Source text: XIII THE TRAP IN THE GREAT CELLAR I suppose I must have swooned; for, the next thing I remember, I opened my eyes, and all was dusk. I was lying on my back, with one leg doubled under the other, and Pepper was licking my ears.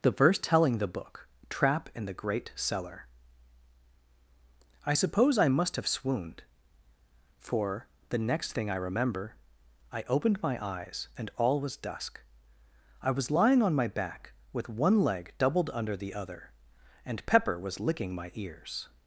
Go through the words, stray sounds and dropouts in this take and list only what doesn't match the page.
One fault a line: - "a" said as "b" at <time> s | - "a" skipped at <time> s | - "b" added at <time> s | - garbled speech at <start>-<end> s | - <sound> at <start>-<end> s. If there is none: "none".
- "XIII" said as "The verse telling" at 0.0 s
- "book" added at 0.9 s